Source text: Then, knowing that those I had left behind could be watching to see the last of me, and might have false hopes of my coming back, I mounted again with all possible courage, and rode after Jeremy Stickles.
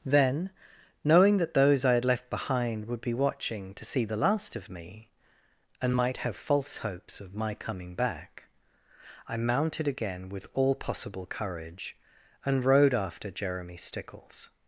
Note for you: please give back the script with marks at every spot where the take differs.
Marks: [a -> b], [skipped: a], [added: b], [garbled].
Then, knowing that those I had left behind [could -> would] be watching to see the last of me, and might have false hopes of my coming back, I mounted again with all possible courage, and rode after Jeremy Stickles.